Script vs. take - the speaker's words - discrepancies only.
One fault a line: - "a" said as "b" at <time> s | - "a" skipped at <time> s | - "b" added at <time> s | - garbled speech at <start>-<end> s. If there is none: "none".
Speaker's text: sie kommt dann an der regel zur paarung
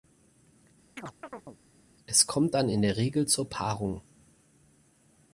- "sie" said as "es" at 2.1 s
- "an" said as "in" at 2.7 s